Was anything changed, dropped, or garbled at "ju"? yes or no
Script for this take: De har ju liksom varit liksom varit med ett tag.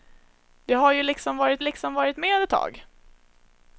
no